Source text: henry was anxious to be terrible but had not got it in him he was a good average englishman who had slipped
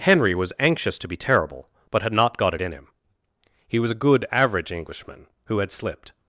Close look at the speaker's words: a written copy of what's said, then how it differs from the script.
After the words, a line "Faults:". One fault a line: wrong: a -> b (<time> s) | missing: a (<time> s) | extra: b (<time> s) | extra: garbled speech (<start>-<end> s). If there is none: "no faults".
henry was anxious to be terrible but had not got it in him he was a good average englishman who had slipped
Faults:
no faults